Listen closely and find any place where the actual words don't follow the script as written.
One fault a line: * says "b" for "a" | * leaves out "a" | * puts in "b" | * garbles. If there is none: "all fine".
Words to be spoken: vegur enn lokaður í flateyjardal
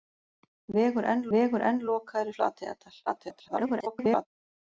* puts in "vegur enn"
* garbles